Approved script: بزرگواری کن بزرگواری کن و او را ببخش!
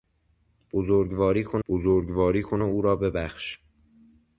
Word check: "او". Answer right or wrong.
right